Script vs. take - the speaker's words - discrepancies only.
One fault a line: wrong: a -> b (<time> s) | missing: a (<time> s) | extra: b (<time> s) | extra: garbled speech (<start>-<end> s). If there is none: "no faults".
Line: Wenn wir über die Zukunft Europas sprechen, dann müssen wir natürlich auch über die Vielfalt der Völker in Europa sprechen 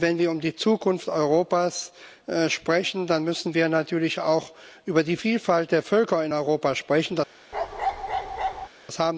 no faults